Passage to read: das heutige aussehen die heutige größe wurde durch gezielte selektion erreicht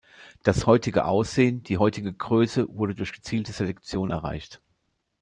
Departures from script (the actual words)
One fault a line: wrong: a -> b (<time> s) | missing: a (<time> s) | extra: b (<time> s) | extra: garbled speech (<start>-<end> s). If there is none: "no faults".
no faults